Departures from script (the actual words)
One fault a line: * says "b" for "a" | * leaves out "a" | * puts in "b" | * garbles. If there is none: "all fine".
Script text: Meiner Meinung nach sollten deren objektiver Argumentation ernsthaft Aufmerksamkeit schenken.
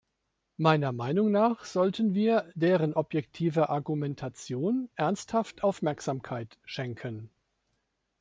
* puts in "wir"